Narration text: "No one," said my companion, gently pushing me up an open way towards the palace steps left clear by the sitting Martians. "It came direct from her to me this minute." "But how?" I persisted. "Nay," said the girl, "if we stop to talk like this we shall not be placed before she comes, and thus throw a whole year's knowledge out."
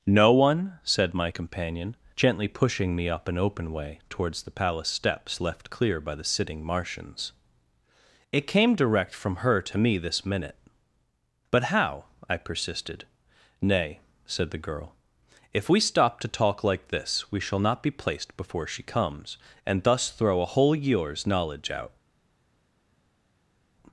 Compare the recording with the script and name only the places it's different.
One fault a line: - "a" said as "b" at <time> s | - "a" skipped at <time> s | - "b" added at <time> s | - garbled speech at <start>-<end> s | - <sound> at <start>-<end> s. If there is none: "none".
none